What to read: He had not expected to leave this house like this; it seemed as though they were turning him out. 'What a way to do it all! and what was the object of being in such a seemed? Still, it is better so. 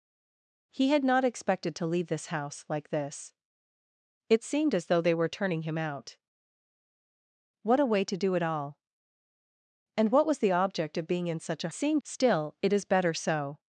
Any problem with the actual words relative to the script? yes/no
no